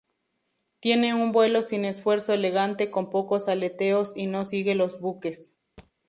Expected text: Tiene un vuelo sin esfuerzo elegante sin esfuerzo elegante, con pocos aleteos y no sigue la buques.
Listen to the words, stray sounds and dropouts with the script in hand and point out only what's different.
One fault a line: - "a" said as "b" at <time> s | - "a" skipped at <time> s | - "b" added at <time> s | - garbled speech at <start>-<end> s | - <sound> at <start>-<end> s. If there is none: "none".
- "sin esfuerzo elegante" skipped at 2.9 s
- "la" said as "los" at 4.7 s
- thud at 5.8-5.9 s